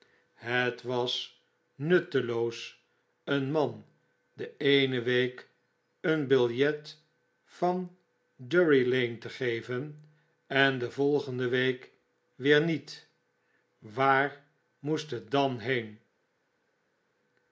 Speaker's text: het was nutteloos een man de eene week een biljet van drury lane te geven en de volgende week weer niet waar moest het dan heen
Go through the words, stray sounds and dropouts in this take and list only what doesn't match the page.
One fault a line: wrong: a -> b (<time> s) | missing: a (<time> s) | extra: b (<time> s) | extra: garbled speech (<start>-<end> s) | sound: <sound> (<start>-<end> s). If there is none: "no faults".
no faults